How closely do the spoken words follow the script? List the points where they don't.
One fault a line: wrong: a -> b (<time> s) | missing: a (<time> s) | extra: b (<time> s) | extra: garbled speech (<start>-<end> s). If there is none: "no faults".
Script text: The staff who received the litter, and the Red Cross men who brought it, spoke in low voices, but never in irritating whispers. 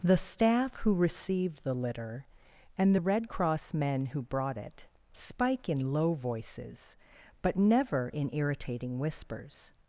wrong: spoke -> spike (5.1 s)